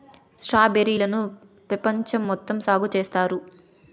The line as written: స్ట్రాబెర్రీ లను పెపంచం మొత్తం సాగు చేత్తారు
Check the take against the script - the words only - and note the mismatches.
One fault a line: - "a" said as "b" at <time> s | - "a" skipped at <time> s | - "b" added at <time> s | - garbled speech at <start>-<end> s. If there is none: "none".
none